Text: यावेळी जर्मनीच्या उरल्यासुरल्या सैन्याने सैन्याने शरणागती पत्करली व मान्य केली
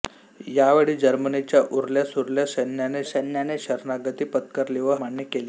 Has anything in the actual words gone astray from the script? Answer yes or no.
no